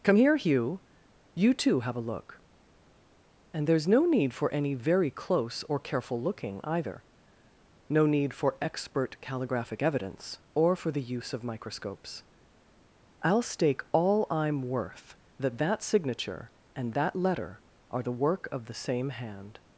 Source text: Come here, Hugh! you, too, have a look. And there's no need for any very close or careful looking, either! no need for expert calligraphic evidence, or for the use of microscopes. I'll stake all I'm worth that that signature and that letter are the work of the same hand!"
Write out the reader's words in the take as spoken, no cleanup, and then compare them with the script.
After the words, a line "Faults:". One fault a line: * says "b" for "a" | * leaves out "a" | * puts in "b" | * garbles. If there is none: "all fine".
Come here, Hugh! you, too, have a look. And there's no need for any very close or careful looking, either! no need for expert calligraphic evidence, or for the use of microscopes. I'll stake all I'm worth that that signature and that letter are the work of the same hand!"
Faults:
all fine